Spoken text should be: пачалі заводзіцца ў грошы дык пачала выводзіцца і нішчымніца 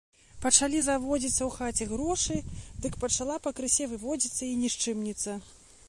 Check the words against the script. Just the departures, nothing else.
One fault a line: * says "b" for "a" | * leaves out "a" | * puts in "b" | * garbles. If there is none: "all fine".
* puts in "хаце"
* puts in "пакрысе"